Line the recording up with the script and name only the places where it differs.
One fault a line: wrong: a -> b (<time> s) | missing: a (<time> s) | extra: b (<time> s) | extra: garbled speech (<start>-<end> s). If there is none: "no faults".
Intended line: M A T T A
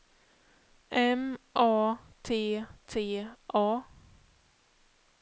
no faults